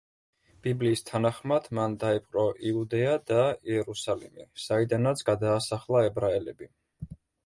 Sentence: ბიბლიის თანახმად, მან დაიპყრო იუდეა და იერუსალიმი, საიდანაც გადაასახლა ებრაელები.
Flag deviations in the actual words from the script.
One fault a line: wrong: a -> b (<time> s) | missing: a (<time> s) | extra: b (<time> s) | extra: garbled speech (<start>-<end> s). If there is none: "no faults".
no faults